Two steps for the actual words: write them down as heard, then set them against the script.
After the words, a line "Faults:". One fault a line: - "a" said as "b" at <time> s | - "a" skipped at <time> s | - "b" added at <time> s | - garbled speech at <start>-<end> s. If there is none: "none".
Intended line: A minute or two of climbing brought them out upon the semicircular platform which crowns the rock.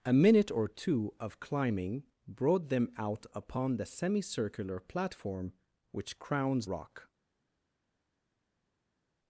A minute or two of climbing brought them out upon the semicircular platform which crowns rock.
Faults:
- "the" skipped at 6.7 s